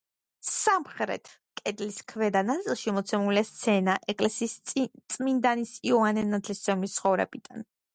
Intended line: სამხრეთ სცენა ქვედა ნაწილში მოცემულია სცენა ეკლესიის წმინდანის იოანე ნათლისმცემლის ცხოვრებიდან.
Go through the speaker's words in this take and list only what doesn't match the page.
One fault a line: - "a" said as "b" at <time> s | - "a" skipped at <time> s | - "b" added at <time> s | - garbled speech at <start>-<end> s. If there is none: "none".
- "სცენა" said as "კედლის" at 1.6 s